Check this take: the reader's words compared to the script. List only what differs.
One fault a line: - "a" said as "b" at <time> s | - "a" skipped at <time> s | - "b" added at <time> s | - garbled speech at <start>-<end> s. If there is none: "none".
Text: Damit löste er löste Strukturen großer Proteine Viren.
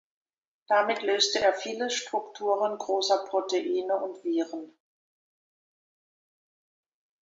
- "löste" said as "viele" at 1.5 s
- "und" added at 4.0 s